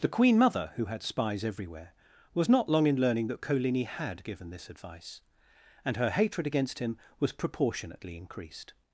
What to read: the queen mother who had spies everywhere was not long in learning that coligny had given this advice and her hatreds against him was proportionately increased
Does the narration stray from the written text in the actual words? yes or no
yes